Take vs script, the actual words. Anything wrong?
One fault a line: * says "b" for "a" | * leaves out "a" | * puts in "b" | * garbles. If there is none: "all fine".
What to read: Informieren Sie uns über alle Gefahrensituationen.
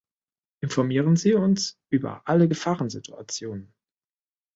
all fine